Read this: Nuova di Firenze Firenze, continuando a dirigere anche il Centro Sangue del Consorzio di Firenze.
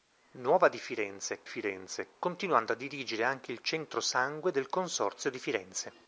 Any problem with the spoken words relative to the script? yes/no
no